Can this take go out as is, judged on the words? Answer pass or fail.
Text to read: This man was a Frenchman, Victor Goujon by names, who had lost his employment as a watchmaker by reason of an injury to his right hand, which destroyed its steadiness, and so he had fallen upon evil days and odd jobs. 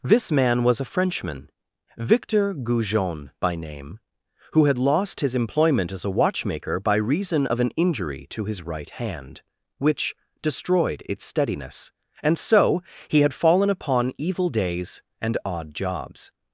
fail